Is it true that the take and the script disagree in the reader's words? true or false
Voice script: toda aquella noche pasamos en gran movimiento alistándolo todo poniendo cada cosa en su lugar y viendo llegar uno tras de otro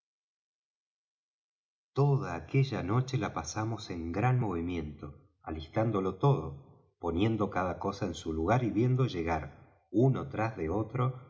true